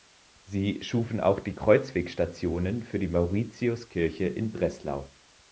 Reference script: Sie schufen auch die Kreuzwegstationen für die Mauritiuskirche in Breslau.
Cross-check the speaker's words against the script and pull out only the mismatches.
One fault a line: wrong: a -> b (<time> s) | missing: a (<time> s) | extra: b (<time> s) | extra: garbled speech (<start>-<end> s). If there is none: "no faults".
no faults